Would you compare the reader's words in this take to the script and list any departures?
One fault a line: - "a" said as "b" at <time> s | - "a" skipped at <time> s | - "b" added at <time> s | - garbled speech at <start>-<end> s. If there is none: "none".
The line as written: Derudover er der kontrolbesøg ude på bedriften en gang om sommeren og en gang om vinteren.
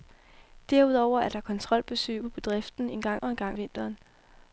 - "ude" skipped at 2.2 s
- "om sommeren" skipped at 3.2 s
- "om" skipped at 3.6 s